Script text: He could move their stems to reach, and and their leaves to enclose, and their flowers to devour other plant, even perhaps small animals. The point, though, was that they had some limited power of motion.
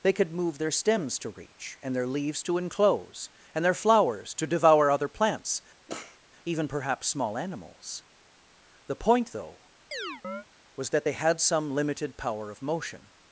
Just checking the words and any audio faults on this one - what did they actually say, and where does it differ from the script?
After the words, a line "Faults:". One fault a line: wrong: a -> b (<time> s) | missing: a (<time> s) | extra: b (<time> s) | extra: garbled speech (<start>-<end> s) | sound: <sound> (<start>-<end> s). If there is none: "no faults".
They could move their stems to reach, and their leaves to enclose, and their flowers to devour other plants, even perhaps small animals. The point, though, was that they had some limited power of motion.
Faults:
wrong: He -> They (0.0 s)
missing: and (1.9 s)
wrong: plant -> plants (5.1 s)
sound: sniff (5.9-6.2 s)
sound: chirp (9.9-10.5 s)